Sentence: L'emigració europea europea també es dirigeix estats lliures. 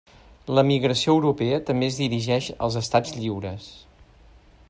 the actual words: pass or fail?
fail